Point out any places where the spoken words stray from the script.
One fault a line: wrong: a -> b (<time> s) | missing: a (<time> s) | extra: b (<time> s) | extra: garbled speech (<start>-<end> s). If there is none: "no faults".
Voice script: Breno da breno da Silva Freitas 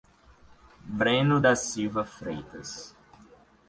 missing: breno da (1.5 s)